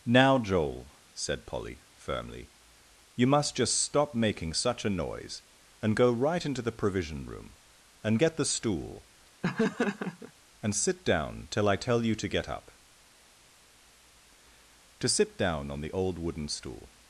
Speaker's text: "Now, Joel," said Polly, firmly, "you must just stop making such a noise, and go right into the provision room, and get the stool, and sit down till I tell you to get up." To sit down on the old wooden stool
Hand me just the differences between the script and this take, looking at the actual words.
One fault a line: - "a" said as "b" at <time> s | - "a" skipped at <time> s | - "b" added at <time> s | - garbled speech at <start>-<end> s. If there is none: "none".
none